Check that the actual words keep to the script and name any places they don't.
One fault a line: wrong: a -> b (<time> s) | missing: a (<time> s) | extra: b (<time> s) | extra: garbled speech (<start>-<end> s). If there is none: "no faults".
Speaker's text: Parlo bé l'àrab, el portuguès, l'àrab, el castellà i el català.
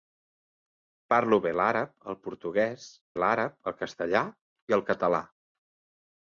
no faults